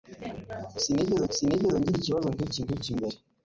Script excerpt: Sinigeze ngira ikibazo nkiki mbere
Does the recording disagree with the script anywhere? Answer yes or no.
yes